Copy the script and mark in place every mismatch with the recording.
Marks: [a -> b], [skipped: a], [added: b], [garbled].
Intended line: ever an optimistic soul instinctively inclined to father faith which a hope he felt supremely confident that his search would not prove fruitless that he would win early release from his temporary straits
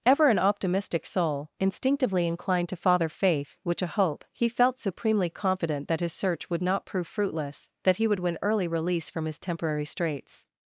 ever an optimistic soul instinctively inclined to father faith which a hope he felt supremely confident that his search would not prove fruitless that he would win early release from his temporary straits